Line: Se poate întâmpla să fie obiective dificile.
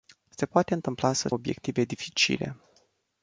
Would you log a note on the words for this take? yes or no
yes